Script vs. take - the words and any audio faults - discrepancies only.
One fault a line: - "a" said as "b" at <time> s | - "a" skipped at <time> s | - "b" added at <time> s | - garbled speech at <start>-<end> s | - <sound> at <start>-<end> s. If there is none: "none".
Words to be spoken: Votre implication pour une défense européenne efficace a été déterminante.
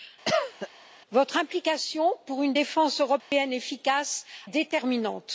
- cough at 0.2-0.7 s
- dropout at 3.2-3.3 s
- "a été" skipped at 4.2 s